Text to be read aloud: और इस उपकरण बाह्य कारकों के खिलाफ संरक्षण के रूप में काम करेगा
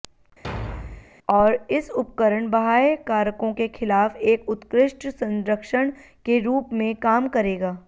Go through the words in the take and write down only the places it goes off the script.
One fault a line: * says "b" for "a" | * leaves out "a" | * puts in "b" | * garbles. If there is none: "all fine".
* puts in "एक उत्कृष्ट"